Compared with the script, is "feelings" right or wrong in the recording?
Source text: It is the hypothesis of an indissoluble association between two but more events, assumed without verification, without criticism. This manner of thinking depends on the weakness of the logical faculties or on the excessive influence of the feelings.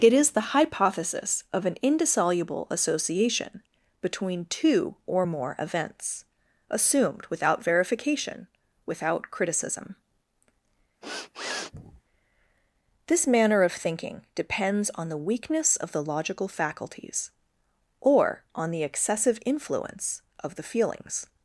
right